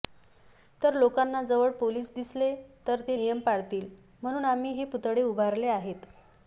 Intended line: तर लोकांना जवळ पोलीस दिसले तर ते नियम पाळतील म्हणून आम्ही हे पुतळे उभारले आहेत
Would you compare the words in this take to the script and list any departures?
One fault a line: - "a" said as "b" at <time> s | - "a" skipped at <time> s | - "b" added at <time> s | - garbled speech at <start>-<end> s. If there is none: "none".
none